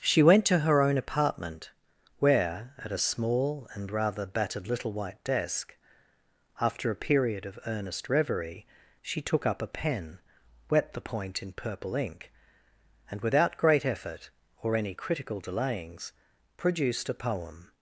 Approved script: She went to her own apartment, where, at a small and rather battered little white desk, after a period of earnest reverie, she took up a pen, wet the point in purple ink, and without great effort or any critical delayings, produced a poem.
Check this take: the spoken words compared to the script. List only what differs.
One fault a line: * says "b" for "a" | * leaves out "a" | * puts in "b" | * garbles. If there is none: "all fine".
all fine